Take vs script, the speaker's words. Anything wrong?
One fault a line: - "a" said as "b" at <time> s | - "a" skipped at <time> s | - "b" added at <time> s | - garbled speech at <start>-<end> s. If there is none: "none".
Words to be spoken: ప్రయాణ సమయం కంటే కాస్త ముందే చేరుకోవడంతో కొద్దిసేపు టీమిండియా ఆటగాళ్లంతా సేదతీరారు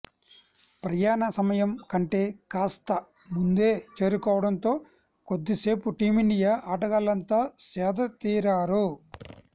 none